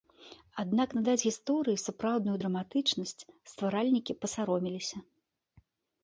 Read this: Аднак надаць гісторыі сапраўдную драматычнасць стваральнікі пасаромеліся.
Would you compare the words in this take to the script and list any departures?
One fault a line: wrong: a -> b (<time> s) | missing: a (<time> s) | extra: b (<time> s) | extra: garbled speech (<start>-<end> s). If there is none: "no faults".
no faults